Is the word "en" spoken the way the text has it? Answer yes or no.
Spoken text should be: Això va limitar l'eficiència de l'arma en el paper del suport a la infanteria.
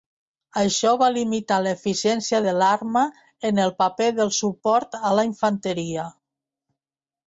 yes